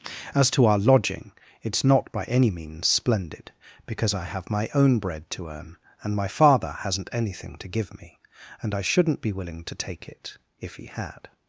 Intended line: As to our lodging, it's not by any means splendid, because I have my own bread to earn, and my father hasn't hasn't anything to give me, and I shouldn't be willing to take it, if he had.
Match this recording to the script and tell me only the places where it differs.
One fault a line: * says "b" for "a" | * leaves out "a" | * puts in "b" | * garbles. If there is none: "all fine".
* leaves out "hasn't"